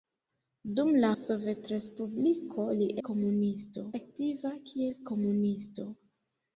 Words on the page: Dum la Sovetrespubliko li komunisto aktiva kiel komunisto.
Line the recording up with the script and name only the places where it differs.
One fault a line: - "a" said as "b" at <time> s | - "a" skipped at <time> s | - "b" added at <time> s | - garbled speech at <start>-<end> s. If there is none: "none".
none